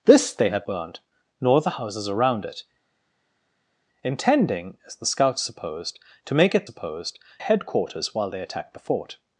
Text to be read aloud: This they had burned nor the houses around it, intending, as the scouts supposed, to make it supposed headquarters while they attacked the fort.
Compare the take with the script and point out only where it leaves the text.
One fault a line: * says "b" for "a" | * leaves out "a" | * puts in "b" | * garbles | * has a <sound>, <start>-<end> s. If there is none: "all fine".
all fine